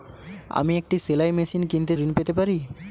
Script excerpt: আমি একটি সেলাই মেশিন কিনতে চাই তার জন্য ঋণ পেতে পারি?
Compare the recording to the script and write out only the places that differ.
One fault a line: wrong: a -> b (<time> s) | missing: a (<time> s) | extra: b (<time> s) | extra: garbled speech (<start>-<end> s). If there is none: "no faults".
missing: চাই তার জন্য (1.9 s)